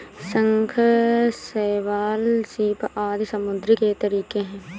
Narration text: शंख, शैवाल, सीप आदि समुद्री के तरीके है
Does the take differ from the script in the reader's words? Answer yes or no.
no